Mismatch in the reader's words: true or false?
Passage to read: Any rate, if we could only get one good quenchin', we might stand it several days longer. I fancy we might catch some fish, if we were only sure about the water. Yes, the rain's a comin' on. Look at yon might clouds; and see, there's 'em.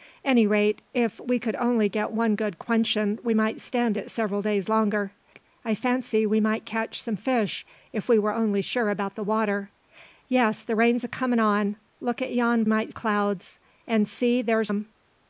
false